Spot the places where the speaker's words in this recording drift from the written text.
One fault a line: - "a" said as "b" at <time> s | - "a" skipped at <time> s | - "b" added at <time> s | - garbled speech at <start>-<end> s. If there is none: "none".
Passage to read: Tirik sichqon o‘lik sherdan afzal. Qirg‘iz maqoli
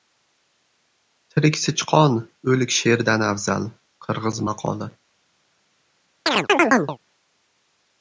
none